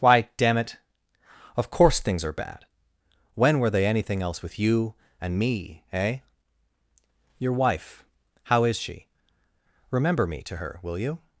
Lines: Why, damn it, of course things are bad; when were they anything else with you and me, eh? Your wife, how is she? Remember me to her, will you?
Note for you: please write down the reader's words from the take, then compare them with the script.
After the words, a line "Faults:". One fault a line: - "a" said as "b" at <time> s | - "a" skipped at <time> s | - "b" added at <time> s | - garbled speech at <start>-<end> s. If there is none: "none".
Why, damn it, of course things are bad; when were they anything else with you and me, eh? Your wife, how is she? Remember me to her, will you?
Faults:
none